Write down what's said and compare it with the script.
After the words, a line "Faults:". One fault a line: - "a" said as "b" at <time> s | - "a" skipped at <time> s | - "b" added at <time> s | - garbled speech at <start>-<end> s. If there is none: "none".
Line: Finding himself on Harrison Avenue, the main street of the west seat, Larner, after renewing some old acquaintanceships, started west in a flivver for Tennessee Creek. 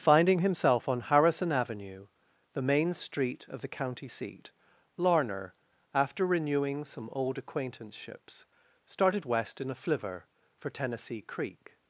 Finding himself on Harrison Avenue, the main street of the county seat, Larner, after renewing some old acquaintanceships, started west in a flivver for Tennessee Creek.
Faults:
- "west" said as "county" at 3.7 s